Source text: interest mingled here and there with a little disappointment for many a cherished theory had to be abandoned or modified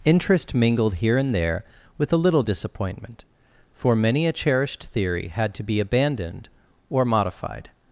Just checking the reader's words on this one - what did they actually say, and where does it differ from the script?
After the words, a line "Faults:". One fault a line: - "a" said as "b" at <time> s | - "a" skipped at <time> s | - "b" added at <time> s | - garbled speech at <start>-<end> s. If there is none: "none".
interest mingled here and there with a little disappointment for many a cherished theory had to be abandoned or modified
Faults:
none